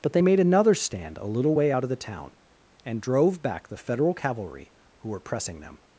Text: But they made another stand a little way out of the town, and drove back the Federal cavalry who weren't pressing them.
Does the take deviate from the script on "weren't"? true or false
true